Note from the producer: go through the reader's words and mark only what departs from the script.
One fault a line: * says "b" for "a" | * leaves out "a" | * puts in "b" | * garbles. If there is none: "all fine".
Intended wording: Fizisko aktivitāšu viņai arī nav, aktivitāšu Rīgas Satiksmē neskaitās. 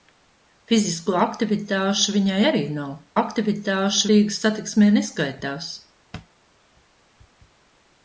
all fine